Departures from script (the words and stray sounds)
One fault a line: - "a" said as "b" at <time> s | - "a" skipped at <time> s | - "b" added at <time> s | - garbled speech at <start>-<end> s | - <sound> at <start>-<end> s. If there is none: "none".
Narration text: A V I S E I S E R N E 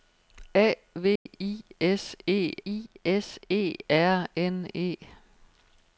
- dropout at 1.2-1.3 s